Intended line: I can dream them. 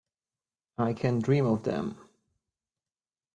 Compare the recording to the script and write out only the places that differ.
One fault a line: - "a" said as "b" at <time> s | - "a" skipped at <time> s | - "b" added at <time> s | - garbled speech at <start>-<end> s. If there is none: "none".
- "of" added at 1.5 s